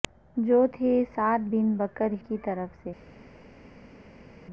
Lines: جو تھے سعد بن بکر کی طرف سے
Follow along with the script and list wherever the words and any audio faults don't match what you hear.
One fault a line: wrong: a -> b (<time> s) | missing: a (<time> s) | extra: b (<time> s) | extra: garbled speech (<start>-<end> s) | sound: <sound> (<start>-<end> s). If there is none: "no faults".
no faults